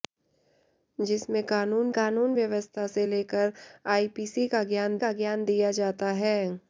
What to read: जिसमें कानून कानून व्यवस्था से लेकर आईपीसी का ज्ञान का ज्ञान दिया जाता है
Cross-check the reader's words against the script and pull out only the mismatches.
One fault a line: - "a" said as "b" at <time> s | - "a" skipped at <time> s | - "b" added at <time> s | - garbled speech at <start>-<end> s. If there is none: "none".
none